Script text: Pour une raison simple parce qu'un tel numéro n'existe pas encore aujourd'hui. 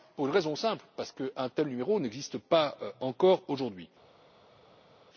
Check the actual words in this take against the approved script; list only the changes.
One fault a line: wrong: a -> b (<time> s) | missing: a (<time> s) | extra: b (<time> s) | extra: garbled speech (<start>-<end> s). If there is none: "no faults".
no faults